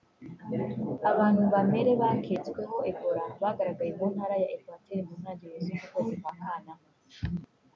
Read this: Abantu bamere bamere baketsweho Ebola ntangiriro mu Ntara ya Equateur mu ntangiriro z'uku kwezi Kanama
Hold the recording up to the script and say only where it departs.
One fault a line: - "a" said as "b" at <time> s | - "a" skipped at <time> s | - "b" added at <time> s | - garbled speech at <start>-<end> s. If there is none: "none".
- "bamere" skipped at 1.9 s
- "ntangiriro" said as "bagaragaye" at 3.4 s
- "kwa" added at 6.2 s